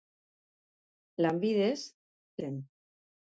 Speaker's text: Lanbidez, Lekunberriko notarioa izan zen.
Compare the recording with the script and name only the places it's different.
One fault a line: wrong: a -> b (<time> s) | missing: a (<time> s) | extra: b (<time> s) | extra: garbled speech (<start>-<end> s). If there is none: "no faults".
missing: Lekunberriko notarioa izan (1.8 s)